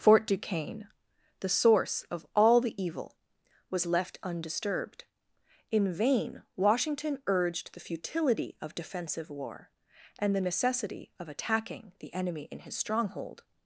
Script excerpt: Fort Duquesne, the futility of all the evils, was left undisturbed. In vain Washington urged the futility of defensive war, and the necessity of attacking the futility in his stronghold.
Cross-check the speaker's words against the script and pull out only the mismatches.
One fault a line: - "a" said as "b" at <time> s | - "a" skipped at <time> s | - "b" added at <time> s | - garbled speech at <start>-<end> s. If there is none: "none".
- "futility" said as "source" at 1.5 s
- "evils" said as "evil" at 2.8 s
- "futility" said as "enemy" at 12.2 s